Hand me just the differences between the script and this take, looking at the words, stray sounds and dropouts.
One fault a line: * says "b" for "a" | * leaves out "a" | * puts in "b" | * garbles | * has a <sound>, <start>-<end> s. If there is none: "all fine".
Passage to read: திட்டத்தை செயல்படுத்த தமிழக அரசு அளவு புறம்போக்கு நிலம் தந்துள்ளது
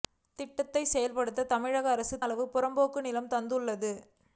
all fine